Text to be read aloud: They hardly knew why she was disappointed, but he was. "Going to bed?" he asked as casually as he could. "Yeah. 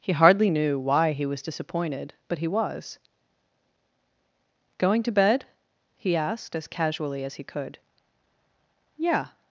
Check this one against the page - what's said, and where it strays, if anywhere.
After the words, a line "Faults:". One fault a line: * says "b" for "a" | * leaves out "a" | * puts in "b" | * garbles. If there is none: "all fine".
He hardly knew why he was disappointed, but he was. "Going to bed?" he asked as casually as he could. "Yeah.
Faults:
* says "He" for "They"
* says "he" for "she"